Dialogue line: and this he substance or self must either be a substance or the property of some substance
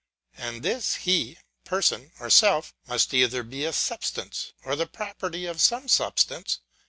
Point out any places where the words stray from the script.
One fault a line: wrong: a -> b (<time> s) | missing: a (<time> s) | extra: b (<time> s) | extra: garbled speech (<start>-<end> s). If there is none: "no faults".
wrong: substance -> person (1.6 s)